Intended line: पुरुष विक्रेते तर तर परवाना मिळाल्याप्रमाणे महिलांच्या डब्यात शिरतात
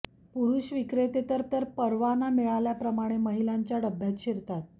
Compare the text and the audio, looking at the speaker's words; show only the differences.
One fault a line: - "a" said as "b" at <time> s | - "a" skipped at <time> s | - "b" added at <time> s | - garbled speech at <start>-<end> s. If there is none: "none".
none